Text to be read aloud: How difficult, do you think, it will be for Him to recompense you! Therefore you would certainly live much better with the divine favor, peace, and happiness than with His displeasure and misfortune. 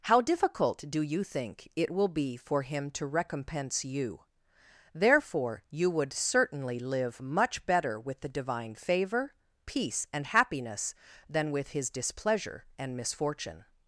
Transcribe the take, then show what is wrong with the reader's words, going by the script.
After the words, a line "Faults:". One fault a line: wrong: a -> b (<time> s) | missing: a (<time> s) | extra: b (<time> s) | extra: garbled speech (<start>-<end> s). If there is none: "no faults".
How difficult, do you think, it will be for Him to recompense you! Therefore you would certainly live much better with the divine favor, peace, and happiness than with His displeasure and misfortune.
Faults:
no faults